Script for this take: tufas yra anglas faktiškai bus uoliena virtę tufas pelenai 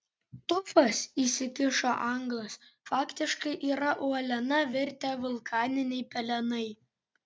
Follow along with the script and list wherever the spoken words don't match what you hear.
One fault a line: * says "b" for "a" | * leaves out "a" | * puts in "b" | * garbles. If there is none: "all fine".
* says "įsikišo" for "yra"
* says "yra" for "bus"
* says "vulkaniniai" for "tufas"